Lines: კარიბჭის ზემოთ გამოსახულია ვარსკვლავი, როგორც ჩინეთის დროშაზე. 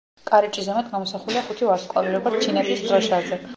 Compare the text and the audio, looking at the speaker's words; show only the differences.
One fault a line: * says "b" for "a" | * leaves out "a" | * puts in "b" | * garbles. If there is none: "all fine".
* puts in "ხუთი"